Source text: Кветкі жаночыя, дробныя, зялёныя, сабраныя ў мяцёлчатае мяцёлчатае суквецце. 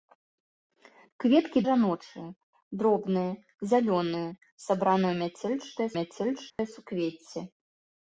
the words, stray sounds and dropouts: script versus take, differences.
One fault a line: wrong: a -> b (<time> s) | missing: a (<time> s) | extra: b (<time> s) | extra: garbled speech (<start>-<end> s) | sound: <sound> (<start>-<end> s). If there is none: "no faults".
sound: dropout (6.5-6.6 s)